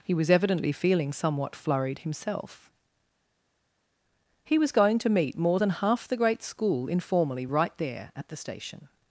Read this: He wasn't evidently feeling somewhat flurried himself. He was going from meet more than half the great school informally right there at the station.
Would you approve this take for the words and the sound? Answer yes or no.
no